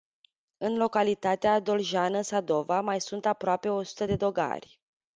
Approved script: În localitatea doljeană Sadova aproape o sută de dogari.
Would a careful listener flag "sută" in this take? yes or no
no